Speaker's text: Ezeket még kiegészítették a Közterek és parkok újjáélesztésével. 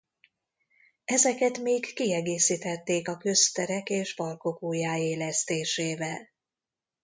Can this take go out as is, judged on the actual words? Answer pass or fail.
pass